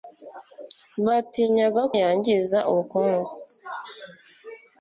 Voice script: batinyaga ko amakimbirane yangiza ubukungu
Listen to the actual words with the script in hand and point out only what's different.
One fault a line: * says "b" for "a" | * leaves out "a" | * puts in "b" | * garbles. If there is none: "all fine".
* leaves out "ko amakimbirane"